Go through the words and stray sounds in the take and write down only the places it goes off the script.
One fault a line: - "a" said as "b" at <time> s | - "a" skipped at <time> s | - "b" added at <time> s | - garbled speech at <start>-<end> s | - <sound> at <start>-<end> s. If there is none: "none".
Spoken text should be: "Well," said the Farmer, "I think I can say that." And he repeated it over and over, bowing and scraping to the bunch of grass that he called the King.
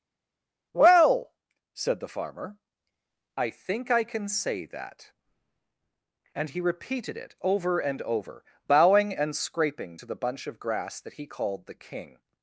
none